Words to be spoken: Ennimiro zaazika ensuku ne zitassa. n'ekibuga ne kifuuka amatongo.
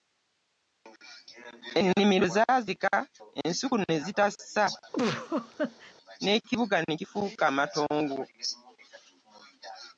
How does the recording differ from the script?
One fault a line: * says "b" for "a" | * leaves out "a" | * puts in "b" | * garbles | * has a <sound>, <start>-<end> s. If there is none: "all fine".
* has a laugh, 4.9-5.9 s